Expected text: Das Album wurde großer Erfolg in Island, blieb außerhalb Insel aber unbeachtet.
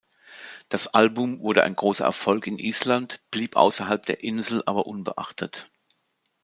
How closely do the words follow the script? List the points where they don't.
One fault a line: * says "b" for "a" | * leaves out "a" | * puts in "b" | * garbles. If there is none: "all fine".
* puts in "ein"
* puts in "der"